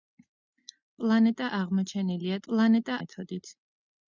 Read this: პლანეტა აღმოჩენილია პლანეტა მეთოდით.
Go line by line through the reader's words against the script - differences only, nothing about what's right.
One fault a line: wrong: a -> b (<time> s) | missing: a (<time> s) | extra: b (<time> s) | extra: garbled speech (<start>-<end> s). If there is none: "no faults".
no faults